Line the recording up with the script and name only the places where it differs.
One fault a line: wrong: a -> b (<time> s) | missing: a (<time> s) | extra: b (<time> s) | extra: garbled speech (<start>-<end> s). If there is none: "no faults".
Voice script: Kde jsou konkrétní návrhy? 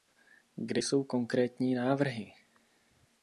no faults